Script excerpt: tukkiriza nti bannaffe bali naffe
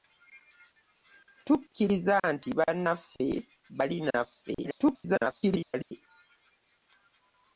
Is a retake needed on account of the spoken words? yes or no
yes